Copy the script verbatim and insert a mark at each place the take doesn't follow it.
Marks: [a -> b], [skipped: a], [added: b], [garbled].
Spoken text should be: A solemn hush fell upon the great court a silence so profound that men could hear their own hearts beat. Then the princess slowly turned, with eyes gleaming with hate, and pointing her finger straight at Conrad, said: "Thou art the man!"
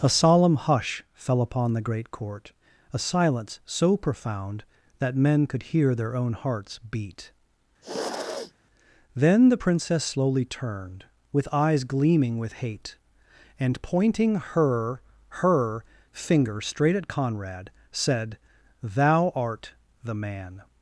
A solemn hush fell upon the great court a silence so profound that men could hear their own hearts beat. Then the princess slowly turned, with eyes gleaming with hate, and pointing her [added: her] finger straight at Conrad, said: "Thou art the man!"